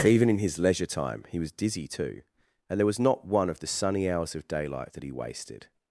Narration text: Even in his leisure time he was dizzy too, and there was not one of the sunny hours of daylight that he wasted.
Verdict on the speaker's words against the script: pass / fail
pass